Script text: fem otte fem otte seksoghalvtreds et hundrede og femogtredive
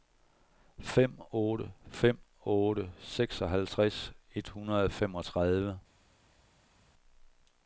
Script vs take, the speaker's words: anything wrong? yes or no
no